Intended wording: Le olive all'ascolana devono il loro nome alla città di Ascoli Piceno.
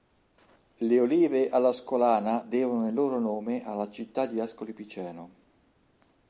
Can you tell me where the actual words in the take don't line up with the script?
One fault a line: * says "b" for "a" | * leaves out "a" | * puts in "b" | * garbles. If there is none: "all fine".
all fine